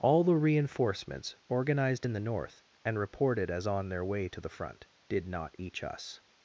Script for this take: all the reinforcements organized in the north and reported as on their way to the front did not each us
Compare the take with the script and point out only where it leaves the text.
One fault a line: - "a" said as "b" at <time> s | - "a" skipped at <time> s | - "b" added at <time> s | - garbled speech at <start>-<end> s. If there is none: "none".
none